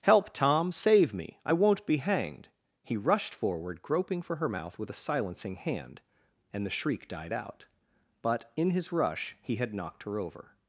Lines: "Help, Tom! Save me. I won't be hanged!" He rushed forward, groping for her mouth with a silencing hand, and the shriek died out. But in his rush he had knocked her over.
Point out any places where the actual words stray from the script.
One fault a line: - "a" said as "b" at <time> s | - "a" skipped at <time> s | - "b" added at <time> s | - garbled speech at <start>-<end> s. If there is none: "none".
none